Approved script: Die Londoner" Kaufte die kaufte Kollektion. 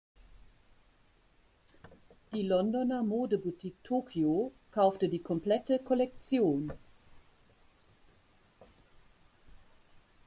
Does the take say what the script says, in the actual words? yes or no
no